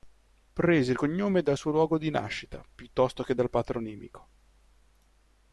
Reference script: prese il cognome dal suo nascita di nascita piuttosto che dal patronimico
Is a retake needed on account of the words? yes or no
yes